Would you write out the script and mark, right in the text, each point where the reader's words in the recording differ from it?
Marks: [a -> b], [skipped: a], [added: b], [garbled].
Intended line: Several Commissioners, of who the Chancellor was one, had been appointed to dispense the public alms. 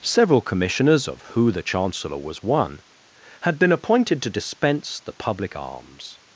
Several Commissioners, of who the Chancellor was one, had been appointed to dispense the public alms.